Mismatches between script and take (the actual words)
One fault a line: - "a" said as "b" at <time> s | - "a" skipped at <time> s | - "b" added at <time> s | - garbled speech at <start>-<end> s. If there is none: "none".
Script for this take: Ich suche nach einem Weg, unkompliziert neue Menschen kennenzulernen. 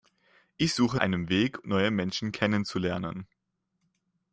- "nach" skipped at 1.0 s
- "unkompliziert" skipped at 1.7 s